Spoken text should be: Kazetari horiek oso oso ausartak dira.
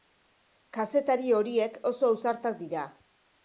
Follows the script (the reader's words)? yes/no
no